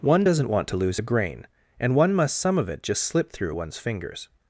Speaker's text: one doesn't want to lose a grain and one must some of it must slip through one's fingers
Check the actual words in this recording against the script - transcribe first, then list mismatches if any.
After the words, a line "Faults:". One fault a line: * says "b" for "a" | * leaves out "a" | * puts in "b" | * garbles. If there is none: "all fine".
one doesn't want to lose a grain and one must some of it just slip through one's fingers
Faults:
* says "just" for "must"